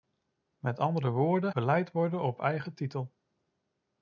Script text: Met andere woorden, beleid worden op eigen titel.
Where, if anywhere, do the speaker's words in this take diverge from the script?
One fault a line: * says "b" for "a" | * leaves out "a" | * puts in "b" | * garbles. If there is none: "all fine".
all fine